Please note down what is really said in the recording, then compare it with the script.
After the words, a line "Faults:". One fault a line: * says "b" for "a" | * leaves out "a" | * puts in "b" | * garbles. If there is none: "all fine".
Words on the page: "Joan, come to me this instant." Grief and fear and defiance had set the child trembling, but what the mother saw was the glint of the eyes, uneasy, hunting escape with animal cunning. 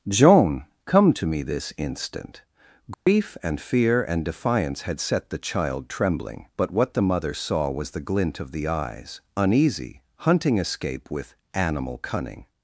"Joan, come to me this instant." Grief and fear and defiance had set the child trembling, but what the mother saw was the glint of the eyes, uneasy, hunting escape with animal cunning.
Faults:
all fine